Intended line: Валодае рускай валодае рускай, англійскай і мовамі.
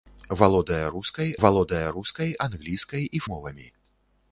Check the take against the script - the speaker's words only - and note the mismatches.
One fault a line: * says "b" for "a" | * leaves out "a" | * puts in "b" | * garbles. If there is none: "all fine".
all fine